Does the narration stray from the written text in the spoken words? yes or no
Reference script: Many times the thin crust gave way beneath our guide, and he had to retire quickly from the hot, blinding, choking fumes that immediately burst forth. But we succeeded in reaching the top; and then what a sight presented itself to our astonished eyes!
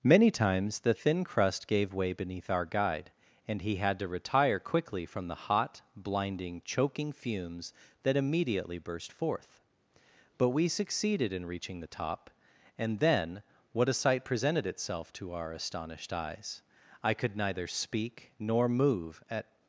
yes